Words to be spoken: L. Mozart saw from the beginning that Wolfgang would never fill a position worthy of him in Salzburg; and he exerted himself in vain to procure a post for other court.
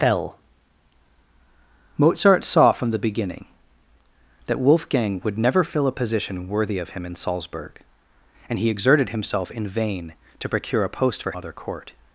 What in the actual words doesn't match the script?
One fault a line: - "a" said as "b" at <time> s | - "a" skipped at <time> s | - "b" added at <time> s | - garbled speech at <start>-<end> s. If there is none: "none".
none